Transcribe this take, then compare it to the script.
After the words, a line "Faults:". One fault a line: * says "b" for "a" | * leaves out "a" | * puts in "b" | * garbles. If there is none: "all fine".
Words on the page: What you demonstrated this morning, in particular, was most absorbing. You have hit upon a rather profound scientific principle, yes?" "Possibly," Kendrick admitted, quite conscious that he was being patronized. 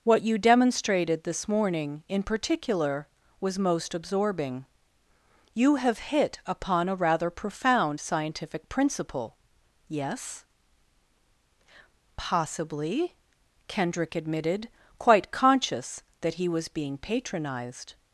What you demonstrated this morning, in particular, was most absorbing. You have hit upon a rather profound scientific principle, yes?" "Possibly," Kendrick admitted, quite conscious that he was being patronized.
Faults:
all fine